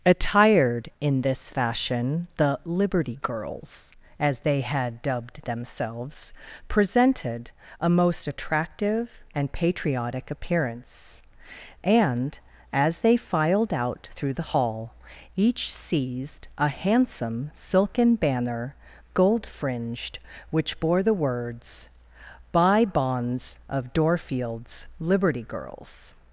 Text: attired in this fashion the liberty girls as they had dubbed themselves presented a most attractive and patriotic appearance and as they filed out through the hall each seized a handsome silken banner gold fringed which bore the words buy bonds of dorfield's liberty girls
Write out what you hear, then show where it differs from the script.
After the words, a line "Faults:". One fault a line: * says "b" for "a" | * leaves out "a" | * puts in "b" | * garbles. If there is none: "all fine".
attired in this fashion the liberty girls as they had dubbed themselves presented a most attractive and patriotic appearance and as they filed out through the hall each seized a handsome silken banner gold fringed which bore the words buy bonds of dorfield's liberty girls
Faults:
all fine